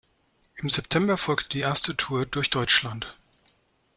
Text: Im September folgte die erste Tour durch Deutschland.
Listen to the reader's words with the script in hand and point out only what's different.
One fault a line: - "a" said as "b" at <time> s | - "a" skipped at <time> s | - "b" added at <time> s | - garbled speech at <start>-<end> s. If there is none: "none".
none